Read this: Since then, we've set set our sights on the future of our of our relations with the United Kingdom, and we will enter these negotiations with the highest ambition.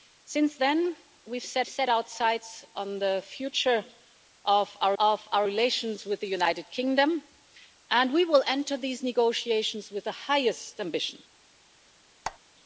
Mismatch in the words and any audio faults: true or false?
true